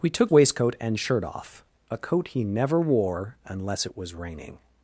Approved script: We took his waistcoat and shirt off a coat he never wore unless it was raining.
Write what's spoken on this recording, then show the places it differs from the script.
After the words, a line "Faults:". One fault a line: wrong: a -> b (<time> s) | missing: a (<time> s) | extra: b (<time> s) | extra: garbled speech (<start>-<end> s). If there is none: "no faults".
We took waistcoat and shirt off a coat he never wore unless it was raining.
Faults:
missing: his (0.3 s)